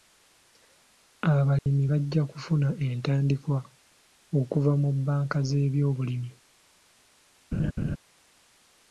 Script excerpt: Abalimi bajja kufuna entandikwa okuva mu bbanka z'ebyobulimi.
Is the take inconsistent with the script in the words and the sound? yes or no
yes